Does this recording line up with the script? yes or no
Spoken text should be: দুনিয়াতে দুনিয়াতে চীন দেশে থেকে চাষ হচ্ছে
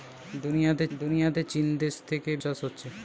yes